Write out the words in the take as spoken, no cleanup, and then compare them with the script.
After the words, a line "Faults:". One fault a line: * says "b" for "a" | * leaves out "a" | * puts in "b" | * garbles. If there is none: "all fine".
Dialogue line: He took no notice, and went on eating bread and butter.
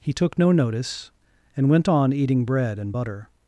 He took no notice, and went on eating bread and butter.
Faults:
all fine